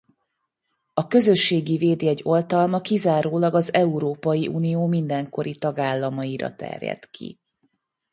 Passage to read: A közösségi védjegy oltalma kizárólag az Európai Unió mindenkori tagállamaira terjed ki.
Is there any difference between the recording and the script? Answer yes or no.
no